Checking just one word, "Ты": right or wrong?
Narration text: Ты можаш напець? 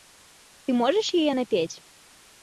right